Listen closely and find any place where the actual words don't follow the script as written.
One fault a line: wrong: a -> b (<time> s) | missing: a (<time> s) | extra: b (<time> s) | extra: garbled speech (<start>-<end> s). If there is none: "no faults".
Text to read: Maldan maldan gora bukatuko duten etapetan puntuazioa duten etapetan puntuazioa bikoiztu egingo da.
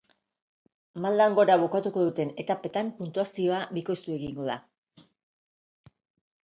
missing: maldan (1.4 s)
missing: duten etapetan puntuazioa (3.6 s)